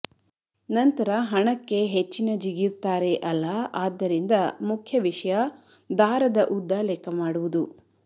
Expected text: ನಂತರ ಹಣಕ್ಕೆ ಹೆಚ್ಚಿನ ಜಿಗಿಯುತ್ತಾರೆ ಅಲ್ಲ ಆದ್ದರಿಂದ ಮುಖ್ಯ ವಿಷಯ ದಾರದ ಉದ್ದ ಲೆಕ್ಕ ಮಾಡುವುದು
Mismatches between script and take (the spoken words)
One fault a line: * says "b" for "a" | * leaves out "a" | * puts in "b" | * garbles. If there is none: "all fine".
all fine